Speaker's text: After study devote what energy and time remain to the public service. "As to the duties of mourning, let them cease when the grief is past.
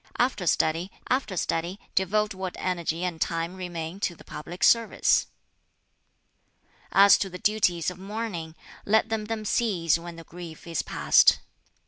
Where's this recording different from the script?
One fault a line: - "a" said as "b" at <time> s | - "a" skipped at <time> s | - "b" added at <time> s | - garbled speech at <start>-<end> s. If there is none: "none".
- "after study" added at 1.1 s
- "them" added at 9.3 s